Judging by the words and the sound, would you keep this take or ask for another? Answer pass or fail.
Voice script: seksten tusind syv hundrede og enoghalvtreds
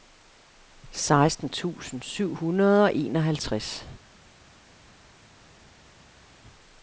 pass